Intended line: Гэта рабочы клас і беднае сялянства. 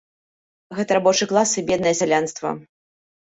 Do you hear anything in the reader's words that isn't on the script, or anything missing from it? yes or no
no